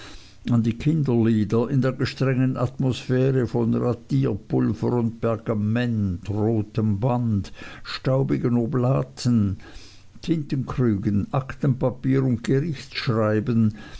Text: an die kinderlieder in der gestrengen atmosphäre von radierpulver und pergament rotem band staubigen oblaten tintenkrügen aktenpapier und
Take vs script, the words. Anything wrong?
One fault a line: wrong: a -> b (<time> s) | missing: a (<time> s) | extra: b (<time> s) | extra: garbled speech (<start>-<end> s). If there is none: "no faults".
no faults